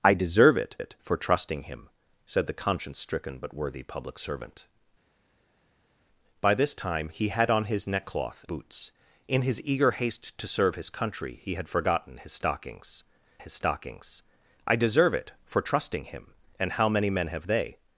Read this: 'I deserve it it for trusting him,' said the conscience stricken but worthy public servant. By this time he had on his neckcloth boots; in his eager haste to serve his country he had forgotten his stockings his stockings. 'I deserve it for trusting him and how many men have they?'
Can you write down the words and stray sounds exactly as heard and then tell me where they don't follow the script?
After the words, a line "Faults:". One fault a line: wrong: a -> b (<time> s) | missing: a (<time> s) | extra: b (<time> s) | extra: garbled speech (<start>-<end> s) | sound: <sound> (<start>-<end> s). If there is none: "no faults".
'I deserve it it for trusting him,' said the conscience stricken but worthy public servant. By this time he had on his neckcloth boots; in his eager haste to serve his country he had forgotten his stockings his stockings. 'I deserve it for trusting him and how many men have they?'
Faults:
no faults